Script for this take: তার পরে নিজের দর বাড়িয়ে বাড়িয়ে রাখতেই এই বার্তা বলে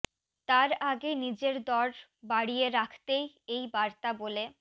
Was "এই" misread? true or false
false